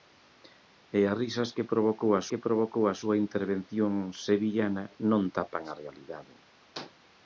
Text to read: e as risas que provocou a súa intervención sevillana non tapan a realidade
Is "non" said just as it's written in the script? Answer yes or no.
yes